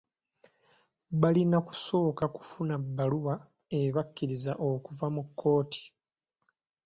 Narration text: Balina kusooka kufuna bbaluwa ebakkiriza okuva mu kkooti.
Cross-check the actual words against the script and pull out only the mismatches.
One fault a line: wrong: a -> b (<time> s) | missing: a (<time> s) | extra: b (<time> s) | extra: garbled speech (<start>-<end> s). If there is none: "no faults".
no faults